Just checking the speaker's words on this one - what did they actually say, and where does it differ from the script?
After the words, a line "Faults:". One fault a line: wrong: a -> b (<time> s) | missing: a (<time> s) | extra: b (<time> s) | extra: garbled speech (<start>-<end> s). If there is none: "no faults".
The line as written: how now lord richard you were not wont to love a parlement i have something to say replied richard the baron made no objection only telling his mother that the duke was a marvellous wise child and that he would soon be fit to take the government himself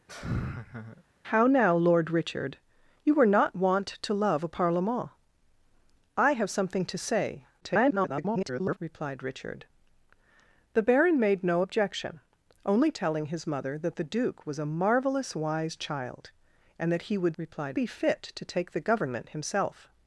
how now lord richard you were not wont to love a parlement i have something to say [garbled] replied richard the baron made no objection only telling his mother that the duke was a marvellous wise child and that he would replied be fit to take the government himself
Faults:
extra: garbled speech (7.6-8.8 s)
wrong: soon -> replied (17.4 s)